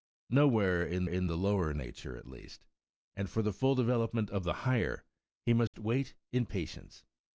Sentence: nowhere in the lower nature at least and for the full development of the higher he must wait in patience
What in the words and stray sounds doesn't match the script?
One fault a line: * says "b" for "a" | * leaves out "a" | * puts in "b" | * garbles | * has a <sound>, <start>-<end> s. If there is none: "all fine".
* puts in "in"
* has a dropout, 5.7-5.7 s